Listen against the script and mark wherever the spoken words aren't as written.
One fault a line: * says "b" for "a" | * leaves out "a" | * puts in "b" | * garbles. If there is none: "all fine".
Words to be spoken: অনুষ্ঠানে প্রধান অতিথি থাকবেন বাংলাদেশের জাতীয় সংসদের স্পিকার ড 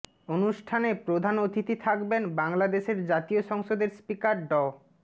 all fine